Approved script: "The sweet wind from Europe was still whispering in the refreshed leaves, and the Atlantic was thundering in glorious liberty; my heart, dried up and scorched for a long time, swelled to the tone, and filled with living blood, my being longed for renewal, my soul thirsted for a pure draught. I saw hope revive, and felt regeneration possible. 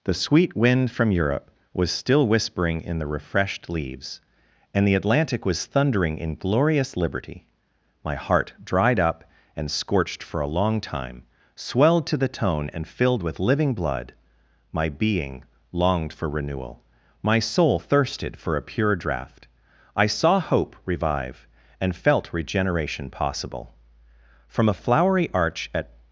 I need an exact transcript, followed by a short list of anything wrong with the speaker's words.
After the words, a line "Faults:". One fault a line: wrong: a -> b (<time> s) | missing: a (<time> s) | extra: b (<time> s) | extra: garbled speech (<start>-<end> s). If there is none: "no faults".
"The sweet wind from Europe was still whispering in the refreshed leaves, and the Atlantic was thundering in glorious liberty; my heart, dried up and scorched for a long time, swelled to the tone, and filled with living blood, my being longed for renewal, my soul thirsted for a pure draught. I saw hope revive, and felt regeneration possible. From a flowery arch at
Faults:
extra: From a flowery arch at (24.5 s)